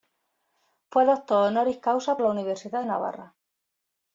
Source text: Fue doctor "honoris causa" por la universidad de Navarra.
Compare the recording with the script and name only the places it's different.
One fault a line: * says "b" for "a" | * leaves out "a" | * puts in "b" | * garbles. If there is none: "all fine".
* leaves out "por"